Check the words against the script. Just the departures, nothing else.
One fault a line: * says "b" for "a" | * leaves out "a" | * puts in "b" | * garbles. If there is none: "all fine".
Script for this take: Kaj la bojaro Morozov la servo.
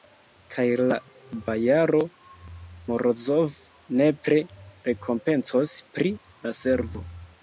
* puts in "nepre rekompencos pri"